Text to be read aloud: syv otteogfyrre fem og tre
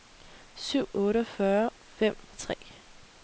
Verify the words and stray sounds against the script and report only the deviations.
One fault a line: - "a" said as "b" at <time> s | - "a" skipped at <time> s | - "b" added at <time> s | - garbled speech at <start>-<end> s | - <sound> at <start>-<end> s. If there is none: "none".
none